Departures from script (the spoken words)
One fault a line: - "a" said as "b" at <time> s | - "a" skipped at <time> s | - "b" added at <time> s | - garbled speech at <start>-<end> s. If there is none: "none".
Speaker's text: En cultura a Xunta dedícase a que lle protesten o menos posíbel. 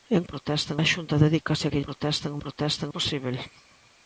- "cultura" said as "protesten" at 0.3 s
- "lle" skipped at 1.8 s
- "menos" said as "protesten" at 2.4 s